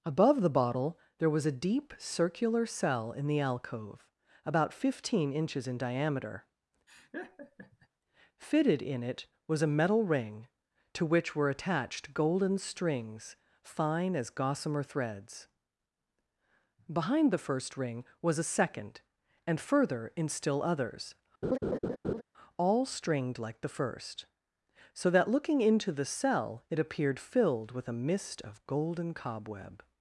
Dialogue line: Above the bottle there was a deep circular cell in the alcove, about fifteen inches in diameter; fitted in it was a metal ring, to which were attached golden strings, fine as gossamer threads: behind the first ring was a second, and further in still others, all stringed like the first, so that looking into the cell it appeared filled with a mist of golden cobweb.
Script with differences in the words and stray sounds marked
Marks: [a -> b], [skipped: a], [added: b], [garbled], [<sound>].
Above the bottle there was a deep circular cell in the alcove, about fifteen inches in diameter; [laugh] fitted in it was a metal ring, to which were attached golden strings, fine as gossamer threads: behind the first ring was a second, and further in still others, [laugh] all stringed like the first, so that looking into the cell it appeared filled with a mist of golden cobweb.